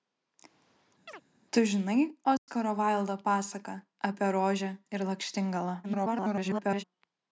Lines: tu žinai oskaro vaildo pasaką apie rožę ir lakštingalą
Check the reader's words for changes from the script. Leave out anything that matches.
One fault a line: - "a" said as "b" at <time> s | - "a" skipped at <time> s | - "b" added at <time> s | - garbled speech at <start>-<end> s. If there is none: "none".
- garbled speech at 5.8-6.8 s